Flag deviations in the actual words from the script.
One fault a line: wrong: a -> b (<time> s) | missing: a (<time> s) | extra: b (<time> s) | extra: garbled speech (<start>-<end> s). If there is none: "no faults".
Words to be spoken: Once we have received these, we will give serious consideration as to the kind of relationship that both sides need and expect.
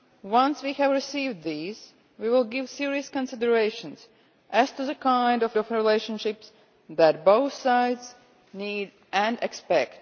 extra: of (5.6 s)